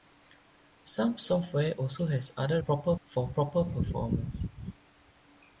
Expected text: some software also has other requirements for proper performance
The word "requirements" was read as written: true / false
false